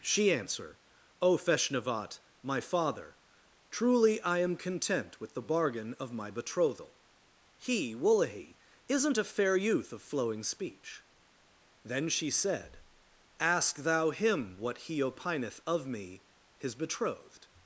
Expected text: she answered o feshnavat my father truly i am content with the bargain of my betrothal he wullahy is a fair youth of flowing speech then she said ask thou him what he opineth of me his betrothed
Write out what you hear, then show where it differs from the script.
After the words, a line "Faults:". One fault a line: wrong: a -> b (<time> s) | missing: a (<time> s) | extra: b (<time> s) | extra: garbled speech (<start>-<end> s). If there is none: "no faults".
she answer o feshnavat my father truly i am content with the bargain of my betrothal he wullahy isn't a fair youth of flowing speech then she said ask thou him what he opineth of me his betrothed
Faults:
wrong: answered -> answer (0.3 s)
wrong: is -> isn't (8.9 s)